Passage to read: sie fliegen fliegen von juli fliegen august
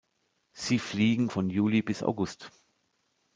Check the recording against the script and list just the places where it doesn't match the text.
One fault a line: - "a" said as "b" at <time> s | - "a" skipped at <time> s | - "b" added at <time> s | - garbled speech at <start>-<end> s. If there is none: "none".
- "fliegen" skipped at 1.3 s
- "fliegen" said as "bis" at 1.8 s